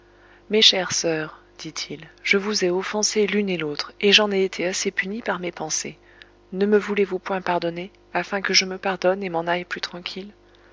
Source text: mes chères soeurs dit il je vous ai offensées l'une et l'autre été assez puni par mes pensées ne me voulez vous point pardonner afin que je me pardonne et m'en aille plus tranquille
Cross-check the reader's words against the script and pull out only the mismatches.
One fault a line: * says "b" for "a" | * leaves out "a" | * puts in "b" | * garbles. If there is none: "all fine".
* puts in "et j'en ai"